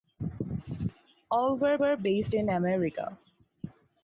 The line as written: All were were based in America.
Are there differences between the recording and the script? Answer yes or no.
no